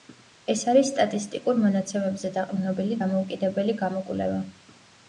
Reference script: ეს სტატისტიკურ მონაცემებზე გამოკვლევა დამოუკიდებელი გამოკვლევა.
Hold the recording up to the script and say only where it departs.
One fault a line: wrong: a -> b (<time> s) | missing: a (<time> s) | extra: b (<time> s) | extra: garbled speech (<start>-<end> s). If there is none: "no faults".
extra: არის (0.7 s)
wrong: გამოკვლევა -> დაყრდნობილი (2.4 s)